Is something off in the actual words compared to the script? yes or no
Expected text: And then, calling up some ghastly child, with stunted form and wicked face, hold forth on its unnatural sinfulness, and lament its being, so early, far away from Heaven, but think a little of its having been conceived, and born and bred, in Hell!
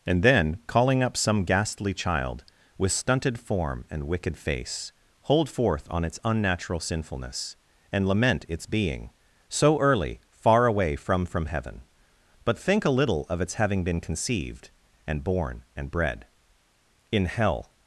yes